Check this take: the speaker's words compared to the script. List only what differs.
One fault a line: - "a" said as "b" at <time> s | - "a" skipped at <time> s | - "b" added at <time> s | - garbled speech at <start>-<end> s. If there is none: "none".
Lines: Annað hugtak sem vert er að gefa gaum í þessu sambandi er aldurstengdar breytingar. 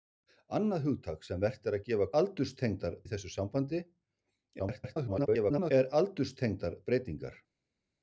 - "gaum" said as "aldurstengdar" at 2.2 s
- garbled speech at 4.6-5.7 s